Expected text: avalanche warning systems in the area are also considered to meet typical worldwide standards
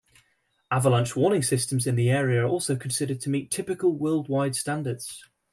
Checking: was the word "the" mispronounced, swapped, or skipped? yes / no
no